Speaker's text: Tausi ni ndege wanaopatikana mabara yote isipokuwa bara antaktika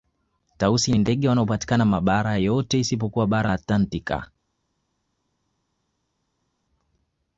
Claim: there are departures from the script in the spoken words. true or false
false